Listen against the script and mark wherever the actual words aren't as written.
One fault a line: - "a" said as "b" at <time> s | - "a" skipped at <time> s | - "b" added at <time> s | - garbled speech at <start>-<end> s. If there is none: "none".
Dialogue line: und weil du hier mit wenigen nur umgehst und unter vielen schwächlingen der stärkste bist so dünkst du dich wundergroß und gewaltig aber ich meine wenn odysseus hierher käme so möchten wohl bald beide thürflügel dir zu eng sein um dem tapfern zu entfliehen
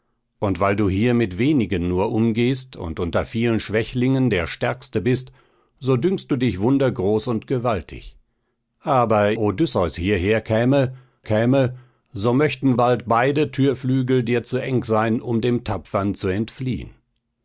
- "ich meine wenn" skipped at 9.3 s
- "käme" added at 11.2 s
- "wohl" skipped at 12.7 s